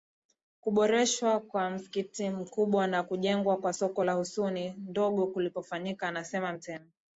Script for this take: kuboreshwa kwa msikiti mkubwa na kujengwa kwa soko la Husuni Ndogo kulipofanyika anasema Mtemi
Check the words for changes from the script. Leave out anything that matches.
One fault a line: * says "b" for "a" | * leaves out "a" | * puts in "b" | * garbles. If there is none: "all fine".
all fine